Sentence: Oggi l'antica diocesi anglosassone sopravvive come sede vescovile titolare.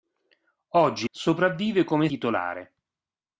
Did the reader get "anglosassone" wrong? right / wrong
wrong